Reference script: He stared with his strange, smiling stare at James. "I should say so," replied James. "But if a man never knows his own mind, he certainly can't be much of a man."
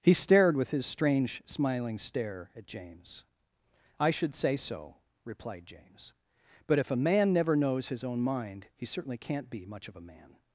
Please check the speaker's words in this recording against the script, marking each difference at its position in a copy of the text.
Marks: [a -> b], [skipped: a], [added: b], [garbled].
He stared with his strange, smiling stare at James. "I should say so," replied James. "But if a man never knows his own mind, he certainly can't be much of a man."